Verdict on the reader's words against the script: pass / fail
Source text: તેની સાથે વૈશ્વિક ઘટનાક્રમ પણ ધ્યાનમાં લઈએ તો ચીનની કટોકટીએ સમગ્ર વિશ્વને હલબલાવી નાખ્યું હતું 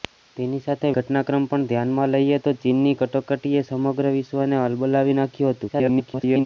fail